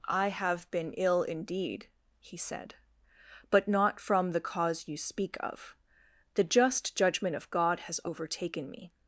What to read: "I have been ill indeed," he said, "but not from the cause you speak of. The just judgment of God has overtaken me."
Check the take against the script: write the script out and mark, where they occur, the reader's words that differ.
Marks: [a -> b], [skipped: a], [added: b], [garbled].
"I have been ill indeed," he said, "but not from the cause you speak of. The just judgment of God has overtaken me."